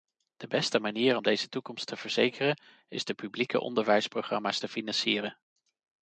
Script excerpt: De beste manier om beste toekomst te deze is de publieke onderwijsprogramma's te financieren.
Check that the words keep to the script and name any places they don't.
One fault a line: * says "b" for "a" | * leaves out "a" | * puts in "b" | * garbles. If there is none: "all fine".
* says "deze" for "beste"
* says "verzekeren" for "deze"